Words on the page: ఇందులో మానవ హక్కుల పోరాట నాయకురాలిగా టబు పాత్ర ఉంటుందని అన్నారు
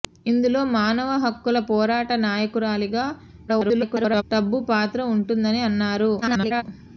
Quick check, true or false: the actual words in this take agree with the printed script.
false